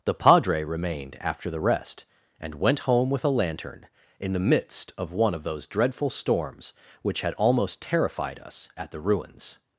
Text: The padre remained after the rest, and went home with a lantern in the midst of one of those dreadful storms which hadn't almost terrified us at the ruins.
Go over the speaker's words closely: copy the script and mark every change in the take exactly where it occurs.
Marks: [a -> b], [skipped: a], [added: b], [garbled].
The padre remained after the rest, and went home with a lantern in the midst of one of those dreadful storms which [hadn't -> had] almost terrified us at the ruins.